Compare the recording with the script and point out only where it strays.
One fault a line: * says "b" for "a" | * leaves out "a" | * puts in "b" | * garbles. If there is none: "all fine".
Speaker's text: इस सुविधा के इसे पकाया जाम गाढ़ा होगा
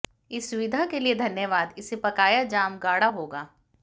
* puts in "लिए धन्यवाद"